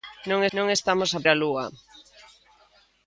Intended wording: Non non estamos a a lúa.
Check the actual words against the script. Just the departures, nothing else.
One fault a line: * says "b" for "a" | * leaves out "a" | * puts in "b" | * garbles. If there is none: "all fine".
all fine